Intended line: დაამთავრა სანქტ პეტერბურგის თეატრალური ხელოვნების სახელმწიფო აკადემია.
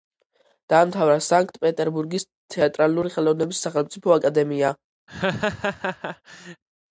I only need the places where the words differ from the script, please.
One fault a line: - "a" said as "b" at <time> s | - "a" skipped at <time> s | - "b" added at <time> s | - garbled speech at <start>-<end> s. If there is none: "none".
none